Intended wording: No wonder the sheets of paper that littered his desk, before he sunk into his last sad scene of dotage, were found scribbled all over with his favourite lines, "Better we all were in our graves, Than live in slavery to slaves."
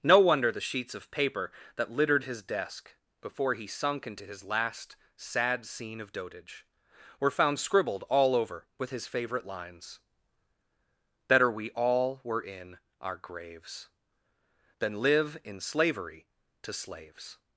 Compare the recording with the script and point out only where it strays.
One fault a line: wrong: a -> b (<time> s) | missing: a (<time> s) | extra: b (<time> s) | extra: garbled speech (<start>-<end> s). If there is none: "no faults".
no faults